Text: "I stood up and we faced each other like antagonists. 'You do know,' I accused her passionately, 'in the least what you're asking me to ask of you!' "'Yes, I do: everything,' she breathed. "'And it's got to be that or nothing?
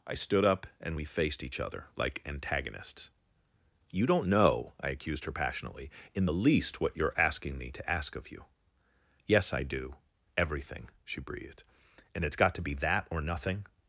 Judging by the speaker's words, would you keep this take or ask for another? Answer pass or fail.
fail